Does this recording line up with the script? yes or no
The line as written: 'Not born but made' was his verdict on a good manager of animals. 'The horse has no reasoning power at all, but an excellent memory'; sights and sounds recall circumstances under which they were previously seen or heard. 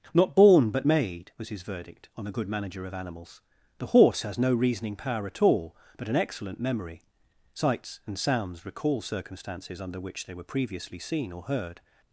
yes